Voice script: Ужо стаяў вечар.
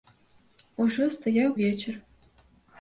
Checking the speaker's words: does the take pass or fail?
pass